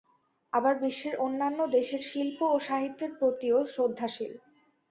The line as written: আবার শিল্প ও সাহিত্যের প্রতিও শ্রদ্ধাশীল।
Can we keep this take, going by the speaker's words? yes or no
no